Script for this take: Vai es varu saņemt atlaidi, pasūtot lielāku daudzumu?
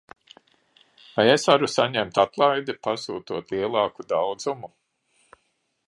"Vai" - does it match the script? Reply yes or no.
yes